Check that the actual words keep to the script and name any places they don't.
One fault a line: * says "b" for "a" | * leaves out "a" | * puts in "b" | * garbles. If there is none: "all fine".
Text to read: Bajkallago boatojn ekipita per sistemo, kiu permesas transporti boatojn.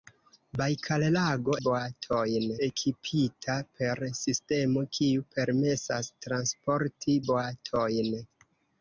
all fine